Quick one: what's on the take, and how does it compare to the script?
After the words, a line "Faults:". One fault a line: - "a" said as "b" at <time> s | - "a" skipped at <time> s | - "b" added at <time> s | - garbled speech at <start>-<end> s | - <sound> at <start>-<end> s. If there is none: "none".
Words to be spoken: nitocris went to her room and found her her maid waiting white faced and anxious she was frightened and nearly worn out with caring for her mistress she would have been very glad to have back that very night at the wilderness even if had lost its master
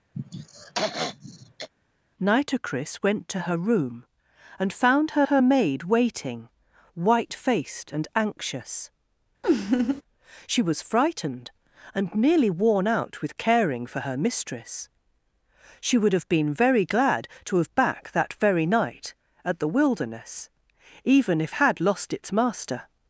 nitocris went to her room and found her her maid waiting white faced and anxious she was frightened and nearly worn out with caring for her mistress she would have been very glad to have back that very night at the wilderness even if had lost its master
Faults:
- throat clearing at 0.1-1.7 s
- laugh at 9.4-10.0 s